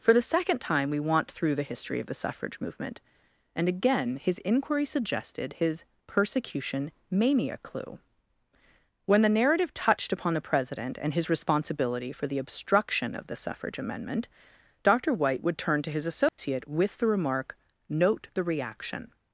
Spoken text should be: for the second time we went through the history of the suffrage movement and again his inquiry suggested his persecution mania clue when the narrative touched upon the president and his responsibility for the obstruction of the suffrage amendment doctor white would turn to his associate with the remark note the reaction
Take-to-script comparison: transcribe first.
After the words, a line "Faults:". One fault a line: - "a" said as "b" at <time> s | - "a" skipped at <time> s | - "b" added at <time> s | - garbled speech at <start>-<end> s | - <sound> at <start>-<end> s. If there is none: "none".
for the second time we want through the history of the suffrage movement and again his inquiry suggested his persecution mania clue when the narrative touched upon the president and his responsibility for the obstruction of the suffrage amendment doctor white would turn to his associate with the remark note the reaction
Faults:
- "went" said as "want" at 1.0 s
- dropout at 16.3-16.4 s